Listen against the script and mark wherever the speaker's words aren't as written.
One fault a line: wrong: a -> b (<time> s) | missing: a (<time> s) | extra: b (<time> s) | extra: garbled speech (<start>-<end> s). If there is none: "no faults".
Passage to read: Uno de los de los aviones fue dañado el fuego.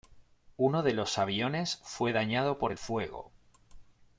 missing: de los (1.2 s)
extra: por (2.6 s)